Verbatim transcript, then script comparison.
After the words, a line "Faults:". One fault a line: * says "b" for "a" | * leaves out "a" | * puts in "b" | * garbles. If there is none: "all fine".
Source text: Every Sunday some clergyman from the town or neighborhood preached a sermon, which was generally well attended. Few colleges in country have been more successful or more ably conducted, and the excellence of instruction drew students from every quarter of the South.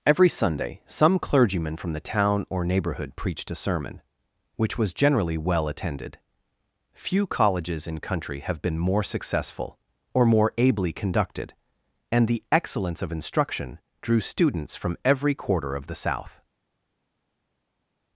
Every Sunday some clergyman from the town or neighborhood preached a sermon, which was generally well attended. Few colleges in country have been more successful or more ably conducted, and the excellence of instruction drew students from every quarter of the South.
Faults:
all fine